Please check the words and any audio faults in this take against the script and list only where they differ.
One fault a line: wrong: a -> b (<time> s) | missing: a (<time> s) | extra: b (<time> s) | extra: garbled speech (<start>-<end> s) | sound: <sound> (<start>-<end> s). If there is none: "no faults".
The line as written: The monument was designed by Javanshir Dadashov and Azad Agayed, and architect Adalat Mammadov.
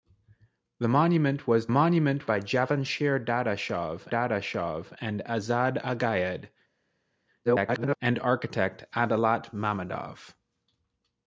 wrong: designed -> monument (1.7 s)
extra: Dadashov (4.1 s)
extra: garbled speech (7.4-8.0 s)